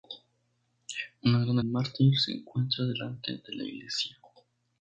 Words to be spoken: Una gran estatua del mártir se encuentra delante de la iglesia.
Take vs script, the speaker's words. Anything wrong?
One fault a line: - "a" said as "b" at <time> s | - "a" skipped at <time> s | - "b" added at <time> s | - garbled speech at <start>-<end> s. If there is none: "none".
- "estatua del" skipped at 1.6 s